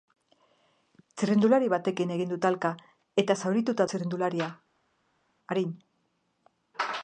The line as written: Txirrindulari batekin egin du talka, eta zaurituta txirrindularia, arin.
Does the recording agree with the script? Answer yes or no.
yes